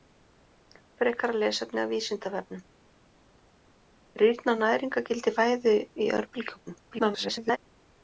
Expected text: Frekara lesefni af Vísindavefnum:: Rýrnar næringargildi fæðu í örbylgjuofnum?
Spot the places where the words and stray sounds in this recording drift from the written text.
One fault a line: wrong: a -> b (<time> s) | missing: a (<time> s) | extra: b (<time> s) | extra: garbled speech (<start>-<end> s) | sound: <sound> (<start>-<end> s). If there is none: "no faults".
extra: garbled speech (6.9-7.6 s)